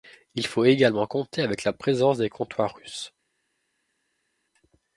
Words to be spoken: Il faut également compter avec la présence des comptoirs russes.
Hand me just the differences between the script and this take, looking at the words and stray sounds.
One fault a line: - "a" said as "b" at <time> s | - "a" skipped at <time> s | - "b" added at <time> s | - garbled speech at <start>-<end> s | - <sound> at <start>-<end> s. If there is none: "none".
none